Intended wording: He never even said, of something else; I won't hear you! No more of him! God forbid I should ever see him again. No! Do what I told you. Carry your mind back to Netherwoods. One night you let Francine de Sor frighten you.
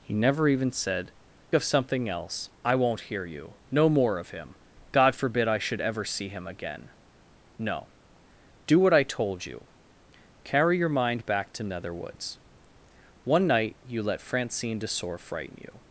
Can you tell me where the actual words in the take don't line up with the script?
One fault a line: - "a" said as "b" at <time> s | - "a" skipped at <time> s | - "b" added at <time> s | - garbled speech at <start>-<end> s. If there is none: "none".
none